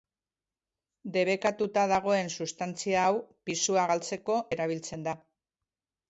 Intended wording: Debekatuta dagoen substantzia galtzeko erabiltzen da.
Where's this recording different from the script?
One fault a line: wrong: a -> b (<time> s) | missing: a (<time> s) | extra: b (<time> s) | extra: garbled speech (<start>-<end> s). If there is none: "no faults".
extra: hau pisua (3.1 s)